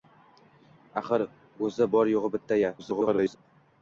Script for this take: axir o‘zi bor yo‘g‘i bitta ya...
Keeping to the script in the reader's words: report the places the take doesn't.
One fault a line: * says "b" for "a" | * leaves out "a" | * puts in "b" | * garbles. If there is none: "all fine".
* garbles